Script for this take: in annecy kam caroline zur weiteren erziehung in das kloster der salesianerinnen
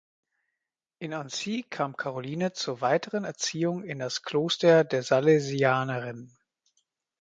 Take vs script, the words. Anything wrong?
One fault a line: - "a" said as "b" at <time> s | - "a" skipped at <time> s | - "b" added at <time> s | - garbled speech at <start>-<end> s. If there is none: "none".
none